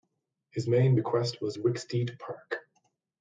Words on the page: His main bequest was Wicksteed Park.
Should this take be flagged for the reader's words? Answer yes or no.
no